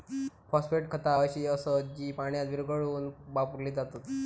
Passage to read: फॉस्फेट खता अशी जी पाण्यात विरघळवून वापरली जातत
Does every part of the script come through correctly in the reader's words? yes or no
no